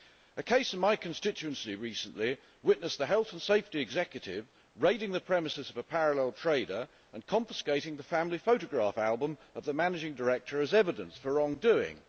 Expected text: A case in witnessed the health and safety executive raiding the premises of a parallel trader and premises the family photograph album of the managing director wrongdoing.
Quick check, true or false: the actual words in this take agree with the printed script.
false